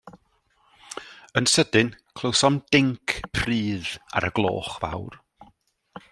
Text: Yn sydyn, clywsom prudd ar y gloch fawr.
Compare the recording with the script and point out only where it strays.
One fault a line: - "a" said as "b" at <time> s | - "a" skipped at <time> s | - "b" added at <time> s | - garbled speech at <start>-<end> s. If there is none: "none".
- "dinc" added at 2.8 s